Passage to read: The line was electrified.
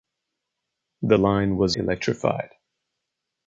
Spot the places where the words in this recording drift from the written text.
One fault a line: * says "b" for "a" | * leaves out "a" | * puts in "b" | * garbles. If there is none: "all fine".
all fine